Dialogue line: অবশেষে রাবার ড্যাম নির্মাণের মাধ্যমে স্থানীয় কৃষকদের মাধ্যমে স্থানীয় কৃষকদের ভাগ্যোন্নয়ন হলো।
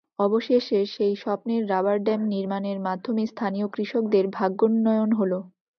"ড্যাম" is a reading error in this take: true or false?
false